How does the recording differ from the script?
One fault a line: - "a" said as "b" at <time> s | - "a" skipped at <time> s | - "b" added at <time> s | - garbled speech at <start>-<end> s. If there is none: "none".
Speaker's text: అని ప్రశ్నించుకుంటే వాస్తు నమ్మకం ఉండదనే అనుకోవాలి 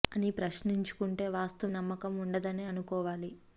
none